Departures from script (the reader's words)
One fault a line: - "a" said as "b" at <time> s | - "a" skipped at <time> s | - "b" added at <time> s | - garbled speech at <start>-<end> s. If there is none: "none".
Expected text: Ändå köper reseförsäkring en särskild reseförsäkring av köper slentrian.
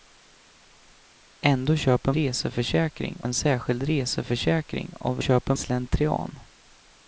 none